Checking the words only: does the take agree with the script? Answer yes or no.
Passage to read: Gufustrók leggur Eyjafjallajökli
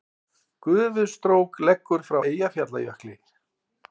no